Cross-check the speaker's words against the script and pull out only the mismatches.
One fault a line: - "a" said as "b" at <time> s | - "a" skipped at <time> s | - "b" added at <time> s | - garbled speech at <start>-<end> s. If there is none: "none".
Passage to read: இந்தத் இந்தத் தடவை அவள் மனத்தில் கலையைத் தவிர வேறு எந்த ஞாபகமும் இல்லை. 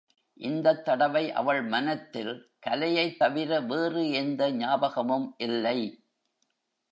- "இந்தத்" skipped at 0.8 s